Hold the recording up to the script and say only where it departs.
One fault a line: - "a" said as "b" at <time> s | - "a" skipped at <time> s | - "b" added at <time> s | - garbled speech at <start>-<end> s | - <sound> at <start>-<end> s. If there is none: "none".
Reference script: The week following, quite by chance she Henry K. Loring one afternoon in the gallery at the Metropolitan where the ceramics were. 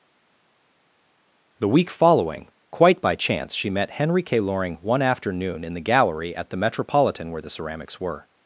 - "met" added at 3.7 s